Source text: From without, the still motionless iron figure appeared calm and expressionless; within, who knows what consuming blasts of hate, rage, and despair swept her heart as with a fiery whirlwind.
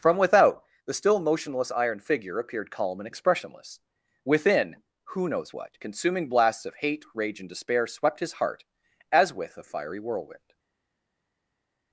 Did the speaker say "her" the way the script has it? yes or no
no